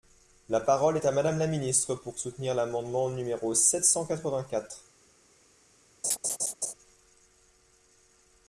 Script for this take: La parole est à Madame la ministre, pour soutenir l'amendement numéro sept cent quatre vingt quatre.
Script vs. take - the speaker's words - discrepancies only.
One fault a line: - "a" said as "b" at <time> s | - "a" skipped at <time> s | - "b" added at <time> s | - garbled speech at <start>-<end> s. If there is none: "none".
none